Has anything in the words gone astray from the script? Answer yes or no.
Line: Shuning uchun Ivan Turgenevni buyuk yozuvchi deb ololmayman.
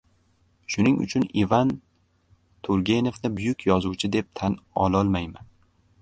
yes